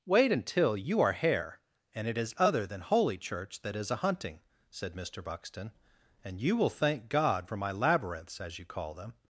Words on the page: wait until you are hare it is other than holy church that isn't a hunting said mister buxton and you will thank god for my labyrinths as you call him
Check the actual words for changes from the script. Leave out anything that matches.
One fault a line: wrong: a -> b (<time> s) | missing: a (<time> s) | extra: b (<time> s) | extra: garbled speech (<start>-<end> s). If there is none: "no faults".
extra: and (1.9 s)
wrong: isn't -> is (3.8 s)
wrong: him -> them (8.9 s)